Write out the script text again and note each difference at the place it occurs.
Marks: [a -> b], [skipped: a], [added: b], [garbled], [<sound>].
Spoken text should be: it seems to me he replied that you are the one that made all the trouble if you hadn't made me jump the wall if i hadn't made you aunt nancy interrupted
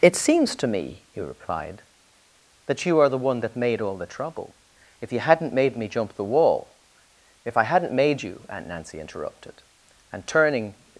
it seems to me he replied that you are the one that made all the trouble if you hadn't made me jump the wall if i hadn't made you aunt nancy interrupted [added: and turning]